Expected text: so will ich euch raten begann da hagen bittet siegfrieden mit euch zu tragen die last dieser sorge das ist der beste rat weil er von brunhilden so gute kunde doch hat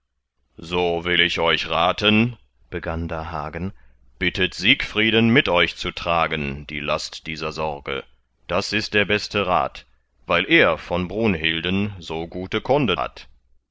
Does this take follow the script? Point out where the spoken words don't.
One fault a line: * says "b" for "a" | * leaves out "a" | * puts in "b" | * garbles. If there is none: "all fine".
* leaves out "doch"